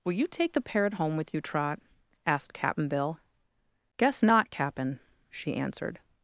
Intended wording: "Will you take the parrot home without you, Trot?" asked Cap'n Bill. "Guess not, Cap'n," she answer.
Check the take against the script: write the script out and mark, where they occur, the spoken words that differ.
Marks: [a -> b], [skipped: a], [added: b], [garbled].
"Will you take the parrot home [without -> with] you, Trot?" asked Cap'n Bill. "Guess not, Cap'n," she [answer. -> answered]